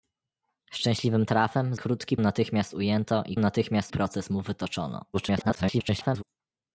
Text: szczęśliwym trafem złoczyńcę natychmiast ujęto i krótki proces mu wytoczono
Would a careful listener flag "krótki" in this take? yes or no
yes